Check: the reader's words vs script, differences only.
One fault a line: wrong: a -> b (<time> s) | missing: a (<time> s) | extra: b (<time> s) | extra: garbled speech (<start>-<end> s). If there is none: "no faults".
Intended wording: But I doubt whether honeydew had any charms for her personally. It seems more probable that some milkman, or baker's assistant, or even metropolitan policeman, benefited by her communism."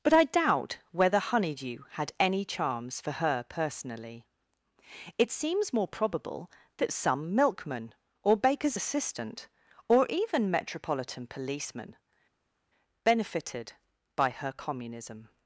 no faults